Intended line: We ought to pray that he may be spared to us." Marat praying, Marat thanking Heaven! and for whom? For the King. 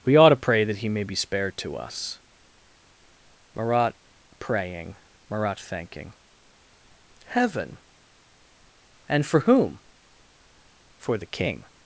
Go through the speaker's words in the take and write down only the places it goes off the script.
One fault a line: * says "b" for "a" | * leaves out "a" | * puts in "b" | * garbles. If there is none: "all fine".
all fine